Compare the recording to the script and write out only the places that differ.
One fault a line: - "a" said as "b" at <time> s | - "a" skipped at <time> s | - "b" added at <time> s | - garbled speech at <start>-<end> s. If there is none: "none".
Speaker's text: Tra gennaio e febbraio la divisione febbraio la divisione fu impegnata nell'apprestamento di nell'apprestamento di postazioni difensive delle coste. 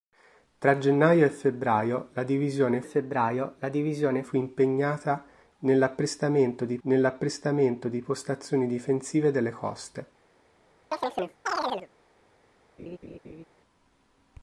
none